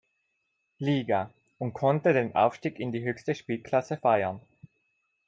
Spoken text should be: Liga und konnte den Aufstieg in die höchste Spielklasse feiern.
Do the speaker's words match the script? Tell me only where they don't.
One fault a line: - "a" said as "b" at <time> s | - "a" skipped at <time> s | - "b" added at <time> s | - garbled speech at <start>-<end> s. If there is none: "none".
none